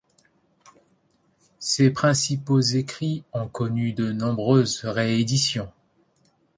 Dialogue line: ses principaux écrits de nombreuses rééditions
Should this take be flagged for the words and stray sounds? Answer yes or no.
yes